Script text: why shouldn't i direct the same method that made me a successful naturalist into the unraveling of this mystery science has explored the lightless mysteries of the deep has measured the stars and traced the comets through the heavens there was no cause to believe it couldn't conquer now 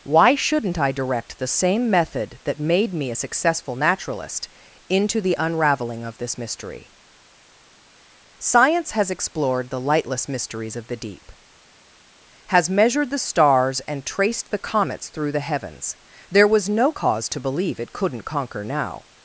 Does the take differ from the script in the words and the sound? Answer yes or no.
no